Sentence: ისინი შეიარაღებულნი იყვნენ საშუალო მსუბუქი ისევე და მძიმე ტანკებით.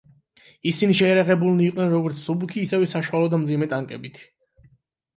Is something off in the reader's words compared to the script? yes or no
yes